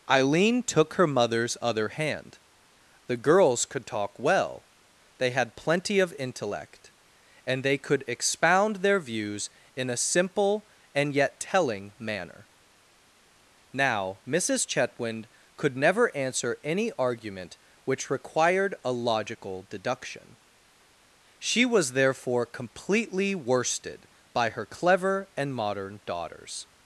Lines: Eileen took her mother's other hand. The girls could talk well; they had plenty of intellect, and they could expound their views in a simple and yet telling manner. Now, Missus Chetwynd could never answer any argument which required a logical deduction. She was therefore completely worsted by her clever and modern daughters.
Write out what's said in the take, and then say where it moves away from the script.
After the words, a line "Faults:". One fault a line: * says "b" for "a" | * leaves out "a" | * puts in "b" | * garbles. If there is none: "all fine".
Eileen took her mother's other hand. The girls could talk well; they had plenty of intellect, and they could expound their views in a simple and yet telling manner. Now, Missus Chetwynd could never answer any argument which required a logical deduction. She was therefore completely worsted by her clever and modern daughters.
Faults:
all fine